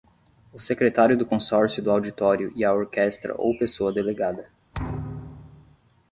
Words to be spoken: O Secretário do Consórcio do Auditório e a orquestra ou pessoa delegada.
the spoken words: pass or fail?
pass